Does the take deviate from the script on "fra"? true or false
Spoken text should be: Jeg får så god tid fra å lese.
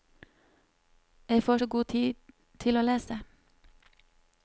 true